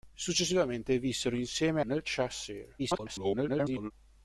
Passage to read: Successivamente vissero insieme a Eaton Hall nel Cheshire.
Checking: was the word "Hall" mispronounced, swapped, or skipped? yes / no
yes